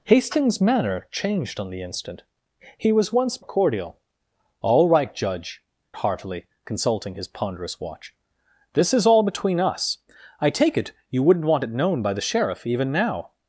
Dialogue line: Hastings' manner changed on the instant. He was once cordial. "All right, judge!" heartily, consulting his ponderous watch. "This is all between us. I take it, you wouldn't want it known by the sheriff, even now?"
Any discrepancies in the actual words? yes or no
no